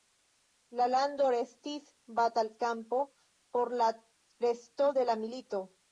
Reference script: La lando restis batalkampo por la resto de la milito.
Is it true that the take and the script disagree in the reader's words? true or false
false